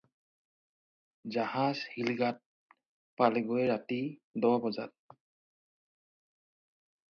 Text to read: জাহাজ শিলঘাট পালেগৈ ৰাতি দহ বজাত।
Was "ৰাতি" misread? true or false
false